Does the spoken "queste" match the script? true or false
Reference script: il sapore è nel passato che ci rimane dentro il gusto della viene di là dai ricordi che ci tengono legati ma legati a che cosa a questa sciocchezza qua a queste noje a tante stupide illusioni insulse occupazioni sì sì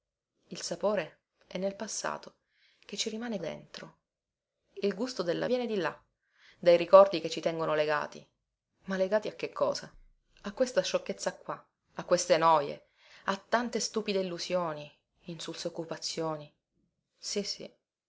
true